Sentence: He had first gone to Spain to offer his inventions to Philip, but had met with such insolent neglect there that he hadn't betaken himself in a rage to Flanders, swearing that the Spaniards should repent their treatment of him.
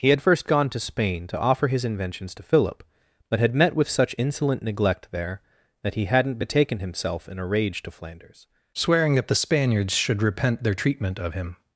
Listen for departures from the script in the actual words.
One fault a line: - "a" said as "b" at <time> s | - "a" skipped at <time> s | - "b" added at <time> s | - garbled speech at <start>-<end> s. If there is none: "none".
none